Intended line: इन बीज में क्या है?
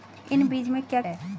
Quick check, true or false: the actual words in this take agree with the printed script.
true